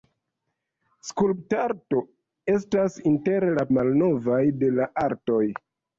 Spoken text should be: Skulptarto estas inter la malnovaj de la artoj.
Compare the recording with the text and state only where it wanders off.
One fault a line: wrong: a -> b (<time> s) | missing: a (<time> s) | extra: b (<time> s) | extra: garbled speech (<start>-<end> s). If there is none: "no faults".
no faults